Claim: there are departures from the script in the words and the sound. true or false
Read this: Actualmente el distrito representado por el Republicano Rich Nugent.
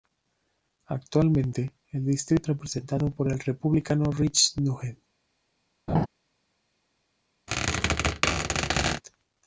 true